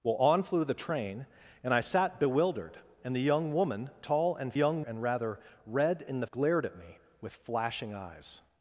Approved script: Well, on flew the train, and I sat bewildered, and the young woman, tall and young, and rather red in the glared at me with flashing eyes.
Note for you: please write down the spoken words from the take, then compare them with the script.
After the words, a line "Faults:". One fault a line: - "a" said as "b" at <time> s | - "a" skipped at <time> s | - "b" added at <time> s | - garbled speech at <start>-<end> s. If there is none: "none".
Well, on flew the train, and I sat bewildered, and the young woman, tall and young, and rather red in the glared at me with flashing eyes.
Faults:
none